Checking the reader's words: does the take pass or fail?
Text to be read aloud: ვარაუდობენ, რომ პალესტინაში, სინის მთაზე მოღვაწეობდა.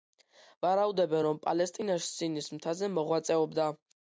pass